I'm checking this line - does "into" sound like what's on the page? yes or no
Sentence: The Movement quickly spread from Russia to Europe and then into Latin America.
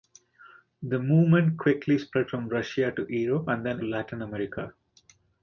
no